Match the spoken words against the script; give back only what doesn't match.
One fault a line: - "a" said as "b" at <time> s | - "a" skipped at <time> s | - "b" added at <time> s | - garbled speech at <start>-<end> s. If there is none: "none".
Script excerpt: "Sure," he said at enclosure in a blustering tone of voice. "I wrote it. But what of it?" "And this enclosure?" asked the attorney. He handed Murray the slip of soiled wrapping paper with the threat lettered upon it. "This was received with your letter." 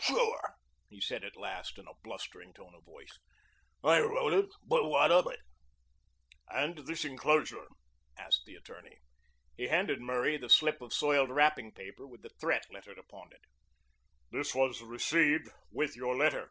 - "enclosure" said as "last" at 1.4 s